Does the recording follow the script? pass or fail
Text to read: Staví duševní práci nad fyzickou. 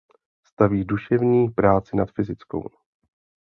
pass